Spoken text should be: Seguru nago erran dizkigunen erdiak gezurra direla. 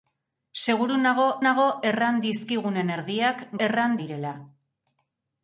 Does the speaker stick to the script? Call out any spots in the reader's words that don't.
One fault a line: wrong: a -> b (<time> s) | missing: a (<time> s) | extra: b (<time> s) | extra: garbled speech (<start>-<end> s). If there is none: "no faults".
extra: nago (1.4 s)
wrong: gezurra -> erran (3.7 s)